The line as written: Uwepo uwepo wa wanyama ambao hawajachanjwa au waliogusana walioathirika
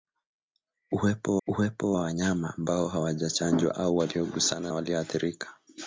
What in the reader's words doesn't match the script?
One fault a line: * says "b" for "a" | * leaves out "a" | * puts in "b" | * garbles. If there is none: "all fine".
all fine